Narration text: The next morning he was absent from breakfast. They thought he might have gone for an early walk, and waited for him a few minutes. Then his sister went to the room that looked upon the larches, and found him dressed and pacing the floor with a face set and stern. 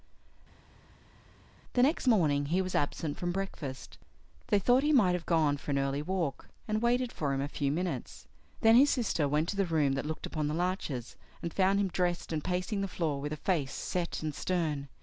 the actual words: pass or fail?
pass